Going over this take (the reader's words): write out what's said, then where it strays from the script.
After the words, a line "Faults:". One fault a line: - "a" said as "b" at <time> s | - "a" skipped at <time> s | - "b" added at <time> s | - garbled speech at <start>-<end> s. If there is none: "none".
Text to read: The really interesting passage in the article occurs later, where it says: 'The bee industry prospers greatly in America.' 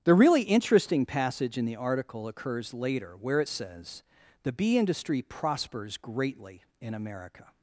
The really interesting passage in the article occurs later, where it says: 'The bee industry prospers greatly in America.'
Faults:
none